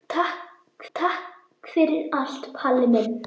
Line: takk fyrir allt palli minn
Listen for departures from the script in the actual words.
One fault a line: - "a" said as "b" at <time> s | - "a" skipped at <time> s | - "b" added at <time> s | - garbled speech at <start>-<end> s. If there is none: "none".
- "takk" added at 0.9 s